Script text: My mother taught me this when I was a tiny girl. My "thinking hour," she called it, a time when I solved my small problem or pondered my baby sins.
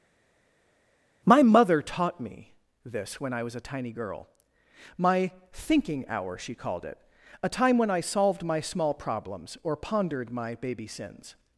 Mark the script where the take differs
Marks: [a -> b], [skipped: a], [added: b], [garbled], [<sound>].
My mother taught me this when I was a tiny girl. My "thinking hour," she called it, a time when I solved my small [problem -> problems] or pondered my baby sins.